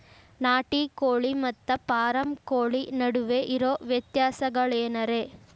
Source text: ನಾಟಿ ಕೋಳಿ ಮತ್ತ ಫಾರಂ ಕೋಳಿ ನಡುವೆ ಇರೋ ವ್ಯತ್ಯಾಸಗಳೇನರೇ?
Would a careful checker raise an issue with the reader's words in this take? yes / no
no